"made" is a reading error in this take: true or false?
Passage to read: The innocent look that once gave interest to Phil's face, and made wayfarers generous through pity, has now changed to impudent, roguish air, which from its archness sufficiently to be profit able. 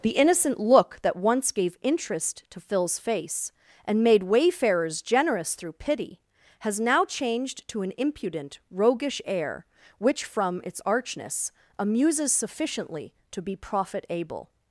false